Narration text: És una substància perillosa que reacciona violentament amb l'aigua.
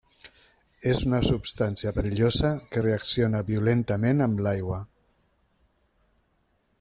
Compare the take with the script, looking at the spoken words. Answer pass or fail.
pass